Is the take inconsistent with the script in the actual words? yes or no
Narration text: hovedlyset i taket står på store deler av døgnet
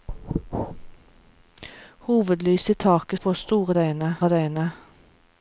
yes